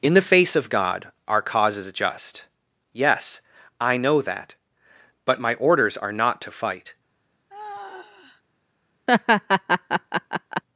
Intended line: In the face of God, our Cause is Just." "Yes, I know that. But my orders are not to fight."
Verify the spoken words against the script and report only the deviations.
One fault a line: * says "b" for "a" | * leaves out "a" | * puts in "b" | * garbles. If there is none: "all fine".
all fine